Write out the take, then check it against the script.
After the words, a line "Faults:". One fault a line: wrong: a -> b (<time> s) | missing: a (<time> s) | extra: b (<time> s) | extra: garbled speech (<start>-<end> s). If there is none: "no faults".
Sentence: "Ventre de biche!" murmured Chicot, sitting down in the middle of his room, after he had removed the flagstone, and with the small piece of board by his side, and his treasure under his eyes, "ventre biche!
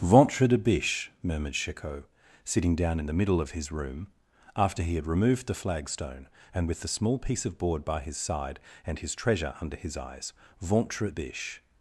"Ventre de biche!" murmured Chicot, sitting down in the middle of his room, after he had removed the flagstone, and with the small piece of board by his side, and his treasure under his eyes, "ventre biche!
Faults:
no faults